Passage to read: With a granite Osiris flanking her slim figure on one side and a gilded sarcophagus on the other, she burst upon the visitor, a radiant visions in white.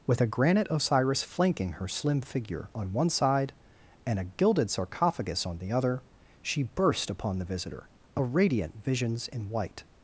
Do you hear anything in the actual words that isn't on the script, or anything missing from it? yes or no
no